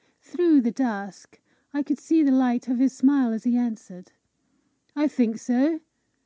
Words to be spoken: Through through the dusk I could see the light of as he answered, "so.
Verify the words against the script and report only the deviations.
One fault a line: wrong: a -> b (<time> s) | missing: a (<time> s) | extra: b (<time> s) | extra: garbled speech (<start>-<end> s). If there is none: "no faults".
missing: through (0.6 s)
extra: his smile (2.8 s)
extra: I think (5.0 s)